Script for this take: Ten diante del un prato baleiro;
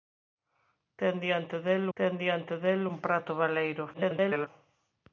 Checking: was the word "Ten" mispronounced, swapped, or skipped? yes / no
no